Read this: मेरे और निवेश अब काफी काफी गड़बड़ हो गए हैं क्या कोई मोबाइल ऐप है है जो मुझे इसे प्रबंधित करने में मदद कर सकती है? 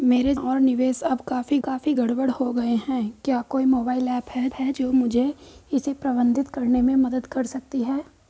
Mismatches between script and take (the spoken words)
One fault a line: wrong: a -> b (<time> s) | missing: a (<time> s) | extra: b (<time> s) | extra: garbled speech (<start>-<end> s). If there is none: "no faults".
no faults